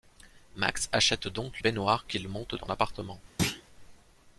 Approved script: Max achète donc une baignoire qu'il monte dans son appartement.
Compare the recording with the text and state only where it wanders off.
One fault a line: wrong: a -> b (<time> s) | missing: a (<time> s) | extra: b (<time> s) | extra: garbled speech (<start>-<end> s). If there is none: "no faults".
missing: une (1.6 s)
missing: son (2.7 s)